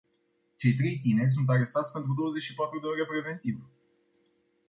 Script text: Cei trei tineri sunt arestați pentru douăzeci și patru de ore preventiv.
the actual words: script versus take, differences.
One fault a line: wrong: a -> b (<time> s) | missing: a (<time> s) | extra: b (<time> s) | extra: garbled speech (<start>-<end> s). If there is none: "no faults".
no faults